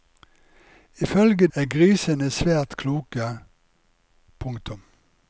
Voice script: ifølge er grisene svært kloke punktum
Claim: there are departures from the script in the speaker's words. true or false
false